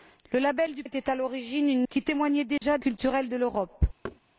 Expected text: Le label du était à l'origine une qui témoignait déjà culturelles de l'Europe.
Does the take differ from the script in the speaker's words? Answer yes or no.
no